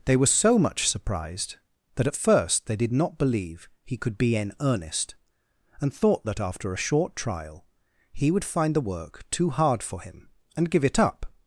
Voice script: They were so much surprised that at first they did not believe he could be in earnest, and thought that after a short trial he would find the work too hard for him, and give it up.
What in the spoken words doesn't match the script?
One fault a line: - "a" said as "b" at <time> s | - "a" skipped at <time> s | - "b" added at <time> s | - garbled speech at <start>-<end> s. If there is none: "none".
none